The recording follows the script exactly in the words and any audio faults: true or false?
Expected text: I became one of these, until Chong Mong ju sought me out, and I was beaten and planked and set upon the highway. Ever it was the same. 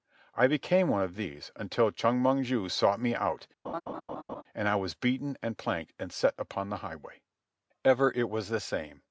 false